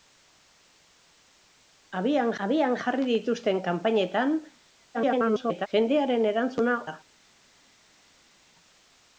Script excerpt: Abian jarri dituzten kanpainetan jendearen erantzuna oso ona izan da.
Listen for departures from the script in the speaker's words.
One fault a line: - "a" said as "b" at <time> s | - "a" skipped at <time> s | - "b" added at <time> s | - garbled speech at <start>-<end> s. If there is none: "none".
- "abian" added at 2.4 s
- garbled speech at 4.9-5.7 s
- "oso ona izan" skipped at 6.8 s